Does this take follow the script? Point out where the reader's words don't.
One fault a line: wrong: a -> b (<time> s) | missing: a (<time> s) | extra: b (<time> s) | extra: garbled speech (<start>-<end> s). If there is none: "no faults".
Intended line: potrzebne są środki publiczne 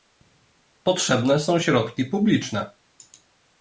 no faults